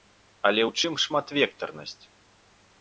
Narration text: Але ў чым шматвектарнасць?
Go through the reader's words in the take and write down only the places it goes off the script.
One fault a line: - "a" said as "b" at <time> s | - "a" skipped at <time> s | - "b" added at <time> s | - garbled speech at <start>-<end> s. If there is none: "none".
none